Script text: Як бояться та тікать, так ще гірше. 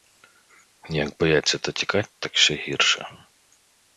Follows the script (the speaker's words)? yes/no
yes